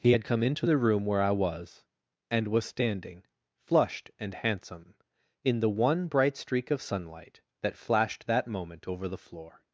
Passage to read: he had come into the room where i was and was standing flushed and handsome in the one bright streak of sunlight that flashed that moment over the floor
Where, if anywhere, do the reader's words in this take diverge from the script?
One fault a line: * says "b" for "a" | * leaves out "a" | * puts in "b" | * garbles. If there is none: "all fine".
all fine